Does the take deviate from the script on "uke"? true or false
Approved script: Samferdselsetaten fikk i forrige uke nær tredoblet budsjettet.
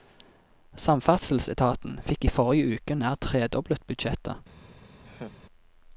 false